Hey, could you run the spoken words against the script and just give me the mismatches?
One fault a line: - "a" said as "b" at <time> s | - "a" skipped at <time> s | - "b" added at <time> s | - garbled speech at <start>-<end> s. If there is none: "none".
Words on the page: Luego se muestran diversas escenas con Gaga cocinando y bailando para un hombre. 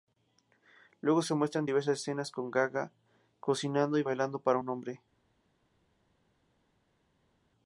none